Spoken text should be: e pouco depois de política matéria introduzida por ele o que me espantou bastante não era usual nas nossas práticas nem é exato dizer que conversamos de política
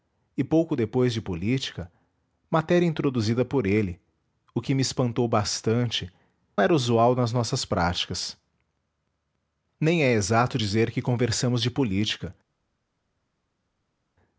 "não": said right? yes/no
no